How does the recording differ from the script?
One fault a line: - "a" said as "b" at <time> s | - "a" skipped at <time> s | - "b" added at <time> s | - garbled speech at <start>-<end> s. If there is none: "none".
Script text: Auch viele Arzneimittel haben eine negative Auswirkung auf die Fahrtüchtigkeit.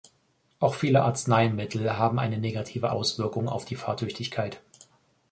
none